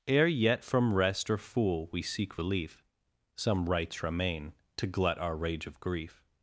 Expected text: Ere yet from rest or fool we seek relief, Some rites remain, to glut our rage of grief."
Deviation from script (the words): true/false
false